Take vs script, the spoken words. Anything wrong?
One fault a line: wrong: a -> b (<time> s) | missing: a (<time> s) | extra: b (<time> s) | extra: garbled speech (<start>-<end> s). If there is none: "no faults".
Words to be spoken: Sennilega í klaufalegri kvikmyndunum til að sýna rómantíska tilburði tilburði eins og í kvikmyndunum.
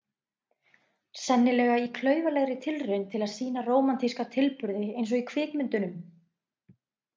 wrong: kvikmyndunum -> tilraun (2.7 s)
missing: tilburði (4.9 s)